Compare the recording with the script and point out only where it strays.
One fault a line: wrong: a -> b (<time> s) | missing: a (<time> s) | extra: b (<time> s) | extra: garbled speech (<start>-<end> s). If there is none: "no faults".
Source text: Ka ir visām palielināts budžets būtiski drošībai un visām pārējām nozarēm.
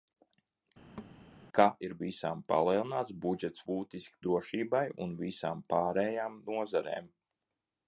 no faults